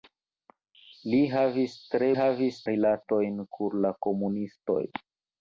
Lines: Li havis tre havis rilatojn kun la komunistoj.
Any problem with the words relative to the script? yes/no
no